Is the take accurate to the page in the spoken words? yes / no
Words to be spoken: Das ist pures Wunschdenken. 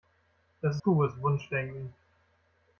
no